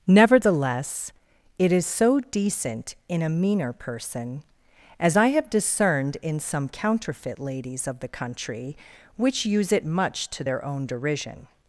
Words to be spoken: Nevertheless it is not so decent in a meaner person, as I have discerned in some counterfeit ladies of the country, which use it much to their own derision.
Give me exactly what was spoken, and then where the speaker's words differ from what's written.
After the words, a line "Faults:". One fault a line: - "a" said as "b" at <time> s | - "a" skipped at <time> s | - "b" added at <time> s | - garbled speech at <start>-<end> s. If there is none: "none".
Nevertheless it is so decent in a meaner person, as I have discerned in some counterfeit ladies of the country, which use it much to their own derision.
Faults:
- "not" skipped at 1.9 s